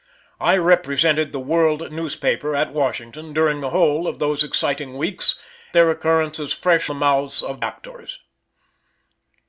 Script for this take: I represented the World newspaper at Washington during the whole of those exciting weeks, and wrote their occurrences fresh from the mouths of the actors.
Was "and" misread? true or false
true